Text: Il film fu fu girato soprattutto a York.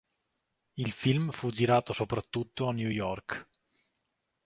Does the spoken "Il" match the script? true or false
true